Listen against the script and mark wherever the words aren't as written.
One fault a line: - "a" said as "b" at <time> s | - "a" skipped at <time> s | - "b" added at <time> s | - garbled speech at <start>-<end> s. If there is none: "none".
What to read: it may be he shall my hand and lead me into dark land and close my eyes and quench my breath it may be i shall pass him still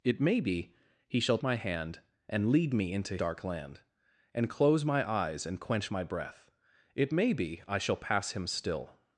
none